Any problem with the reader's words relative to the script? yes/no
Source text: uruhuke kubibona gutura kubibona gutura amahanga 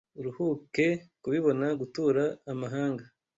yes